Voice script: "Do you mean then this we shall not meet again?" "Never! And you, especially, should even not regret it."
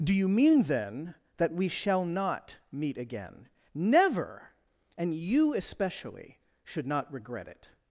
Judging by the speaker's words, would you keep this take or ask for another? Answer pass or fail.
fail